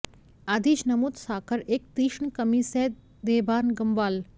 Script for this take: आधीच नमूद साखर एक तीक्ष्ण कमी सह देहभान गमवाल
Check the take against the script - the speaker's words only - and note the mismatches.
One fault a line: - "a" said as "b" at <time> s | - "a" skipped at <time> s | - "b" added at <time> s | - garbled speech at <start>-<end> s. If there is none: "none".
none